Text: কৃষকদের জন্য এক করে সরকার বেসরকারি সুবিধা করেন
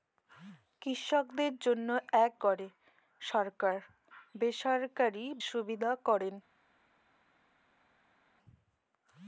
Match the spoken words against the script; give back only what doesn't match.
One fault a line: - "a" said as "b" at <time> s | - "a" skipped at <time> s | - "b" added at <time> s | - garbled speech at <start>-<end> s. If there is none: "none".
none